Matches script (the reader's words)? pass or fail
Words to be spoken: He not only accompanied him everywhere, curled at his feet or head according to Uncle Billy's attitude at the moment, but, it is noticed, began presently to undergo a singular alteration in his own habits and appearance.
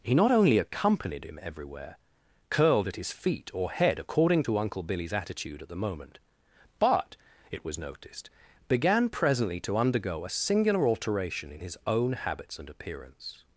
fail